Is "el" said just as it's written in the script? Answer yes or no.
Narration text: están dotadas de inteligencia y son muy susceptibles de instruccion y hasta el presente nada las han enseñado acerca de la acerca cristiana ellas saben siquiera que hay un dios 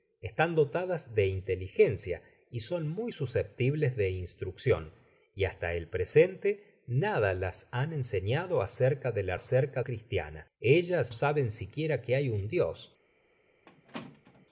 yes